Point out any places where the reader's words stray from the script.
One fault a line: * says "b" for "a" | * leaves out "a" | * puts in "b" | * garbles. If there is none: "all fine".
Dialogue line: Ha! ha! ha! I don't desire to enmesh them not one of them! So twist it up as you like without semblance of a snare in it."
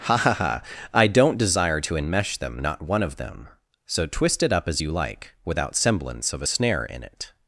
all fine